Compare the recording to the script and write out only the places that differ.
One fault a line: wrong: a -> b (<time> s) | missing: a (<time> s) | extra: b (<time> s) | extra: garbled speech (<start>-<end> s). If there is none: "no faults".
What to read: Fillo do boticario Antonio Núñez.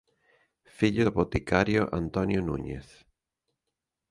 no faults